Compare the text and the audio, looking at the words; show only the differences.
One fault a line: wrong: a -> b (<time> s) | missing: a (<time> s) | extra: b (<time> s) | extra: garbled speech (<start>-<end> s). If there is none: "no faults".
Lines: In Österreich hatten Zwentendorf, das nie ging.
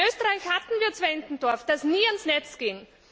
extra: wir (0.8 s)
extra: ans Netz (2.1 s)